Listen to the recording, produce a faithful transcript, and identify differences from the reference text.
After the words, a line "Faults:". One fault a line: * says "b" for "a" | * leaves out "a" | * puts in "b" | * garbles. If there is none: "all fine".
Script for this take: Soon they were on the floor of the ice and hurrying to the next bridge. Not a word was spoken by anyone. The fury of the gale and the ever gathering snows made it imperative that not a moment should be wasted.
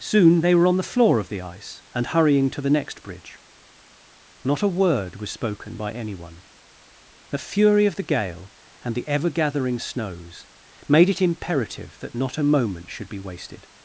Soon they were on the floor of the ice and hurrying to the next bridge. Not a word was spoken by anyone. The fury of the gale and the ever gathering snows made it imperative that not a moment should be wasted.
Faults:
all fine